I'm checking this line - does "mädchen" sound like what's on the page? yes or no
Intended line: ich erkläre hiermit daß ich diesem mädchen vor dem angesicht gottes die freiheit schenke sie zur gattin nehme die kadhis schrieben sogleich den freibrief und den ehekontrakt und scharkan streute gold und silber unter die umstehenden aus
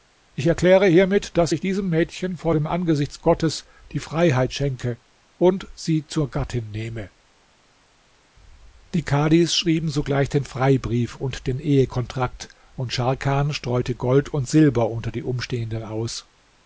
yes